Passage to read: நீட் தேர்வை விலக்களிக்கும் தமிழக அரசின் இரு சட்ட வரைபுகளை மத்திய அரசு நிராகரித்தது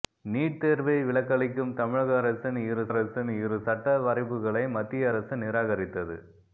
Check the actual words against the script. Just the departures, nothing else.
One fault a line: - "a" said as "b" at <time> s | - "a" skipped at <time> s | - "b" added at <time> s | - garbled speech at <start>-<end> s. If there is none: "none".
- "அரசின் இரு" added at 2.9 s